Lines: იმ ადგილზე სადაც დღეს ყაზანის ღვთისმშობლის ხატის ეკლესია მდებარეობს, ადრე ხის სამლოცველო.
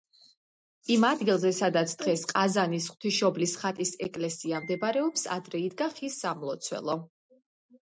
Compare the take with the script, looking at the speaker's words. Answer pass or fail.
fail